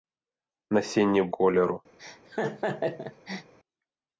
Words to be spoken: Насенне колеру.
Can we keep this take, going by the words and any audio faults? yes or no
no